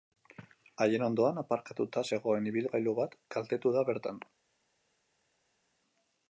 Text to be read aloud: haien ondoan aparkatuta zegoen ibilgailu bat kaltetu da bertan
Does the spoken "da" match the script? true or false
true